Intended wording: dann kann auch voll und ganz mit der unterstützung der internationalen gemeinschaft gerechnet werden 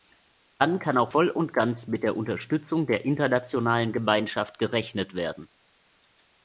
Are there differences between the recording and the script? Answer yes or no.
no